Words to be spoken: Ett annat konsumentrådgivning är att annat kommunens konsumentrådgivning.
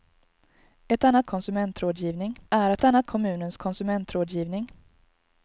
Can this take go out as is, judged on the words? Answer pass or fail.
pass